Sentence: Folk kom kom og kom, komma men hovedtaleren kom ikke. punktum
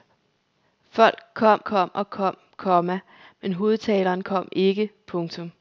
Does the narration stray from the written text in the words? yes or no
no